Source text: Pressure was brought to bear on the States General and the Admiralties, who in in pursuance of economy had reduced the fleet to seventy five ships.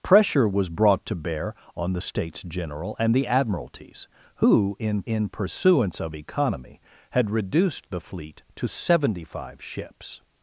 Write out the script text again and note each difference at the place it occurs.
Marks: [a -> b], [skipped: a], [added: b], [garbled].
Pressure was brought to bear on the States General and the Admiralties, who in in pursuance of economy had reduced the fleet to seventy five ships.